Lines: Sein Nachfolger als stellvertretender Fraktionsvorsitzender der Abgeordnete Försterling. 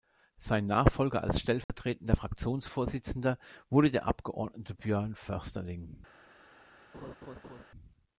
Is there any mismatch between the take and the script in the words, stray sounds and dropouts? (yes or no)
yes